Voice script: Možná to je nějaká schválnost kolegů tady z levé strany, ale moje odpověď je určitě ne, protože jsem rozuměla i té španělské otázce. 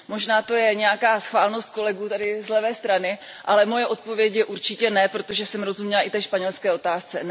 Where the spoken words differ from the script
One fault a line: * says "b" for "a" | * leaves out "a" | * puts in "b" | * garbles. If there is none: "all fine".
all fine